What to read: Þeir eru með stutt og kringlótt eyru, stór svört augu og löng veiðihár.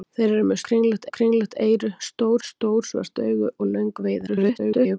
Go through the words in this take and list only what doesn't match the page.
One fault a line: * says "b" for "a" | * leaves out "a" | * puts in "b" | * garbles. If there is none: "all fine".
* says "kringlótt" for "stutt"
* puts in "stór"
* garbles